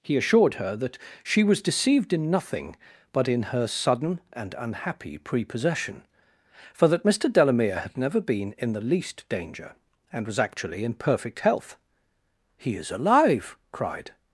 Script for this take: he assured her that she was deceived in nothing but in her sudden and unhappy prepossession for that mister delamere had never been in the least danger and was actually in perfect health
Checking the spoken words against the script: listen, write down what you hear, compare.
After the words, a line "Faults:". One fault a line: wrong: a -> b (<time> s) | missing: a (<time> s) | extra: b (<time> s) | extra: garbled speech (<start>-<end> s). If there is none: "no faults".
he assured her that she was deceived in nothing but in her sudden and unhappy prepossession for that mister delamere had never been in the least danger and was actually in perfect health he is alive cried
Faults:
extra: he is alive cried (12.6 s)